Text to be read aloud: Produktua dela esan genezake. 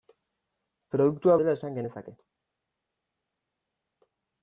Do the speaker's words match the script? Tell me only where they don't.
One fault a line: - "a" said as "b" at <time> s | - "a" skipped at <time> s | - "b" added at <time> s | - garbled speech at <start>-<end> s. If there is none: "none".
none